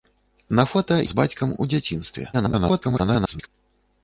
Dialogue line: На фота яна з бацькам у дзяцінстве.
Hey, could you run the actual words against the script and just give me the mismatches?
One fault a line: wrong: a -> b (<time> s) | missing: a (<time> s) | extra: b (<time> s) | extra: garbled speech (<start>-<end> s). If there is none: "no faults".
missing: яна (0.9 s)
extra: garbled speech (2.3-3.5 s)